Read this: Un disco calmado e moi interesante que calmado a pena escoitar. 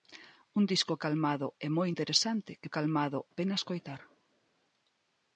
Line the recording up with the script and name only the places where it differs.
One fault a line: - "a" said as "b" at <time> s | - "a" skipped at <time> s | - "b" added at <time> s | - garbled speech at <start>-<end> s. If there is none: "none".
none